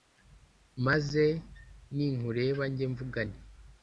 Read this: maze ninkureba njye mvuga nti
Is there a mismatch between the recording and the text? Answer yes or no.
no